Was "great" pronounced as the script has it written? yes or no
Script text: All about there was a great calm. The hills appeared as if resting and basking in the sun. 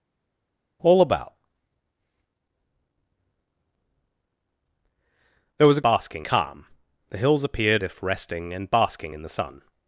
no